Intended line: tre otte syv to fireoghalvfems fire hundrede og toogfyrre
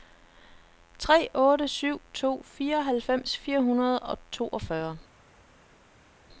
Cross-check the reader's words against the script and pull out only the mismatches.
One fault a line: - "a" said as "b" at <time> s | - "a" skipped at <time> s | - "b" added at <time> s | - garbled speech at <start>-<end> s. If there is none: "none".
none